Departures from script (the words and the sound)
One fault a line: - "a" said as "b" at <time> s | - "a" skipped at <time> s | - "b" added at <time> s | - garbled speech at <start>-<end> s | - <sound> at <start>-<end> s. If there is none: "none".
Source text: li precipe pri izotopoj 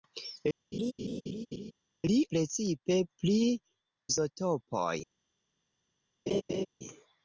- laugh at 0.7-1.7 s
- laugh at 6.3-6.7 s